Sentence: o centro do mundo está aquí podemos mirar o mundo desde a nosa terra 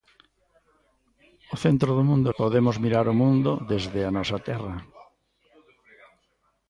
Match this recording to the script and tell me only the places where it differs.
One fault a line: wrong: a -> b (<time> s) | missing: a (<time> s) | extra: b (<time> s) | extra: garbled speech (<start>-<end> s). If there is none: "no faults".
missing: está aquí (2.3 s)